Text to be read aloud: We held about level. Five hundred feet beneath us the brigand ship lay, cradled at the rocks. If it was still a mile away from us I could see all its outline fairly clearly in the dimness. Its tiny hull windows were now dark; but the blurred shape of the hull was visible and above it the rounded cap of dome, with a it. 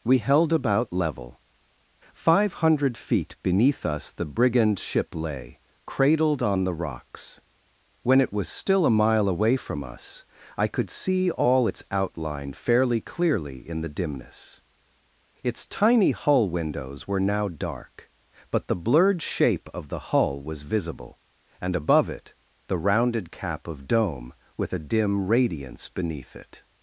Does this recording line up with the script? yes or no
no